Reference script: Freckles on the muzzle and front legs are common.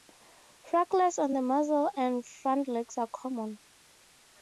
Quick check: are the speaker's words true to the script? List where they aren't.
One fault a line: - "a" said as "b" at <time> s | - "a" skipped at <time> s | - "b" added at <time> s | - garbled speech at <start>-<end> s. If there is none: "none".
none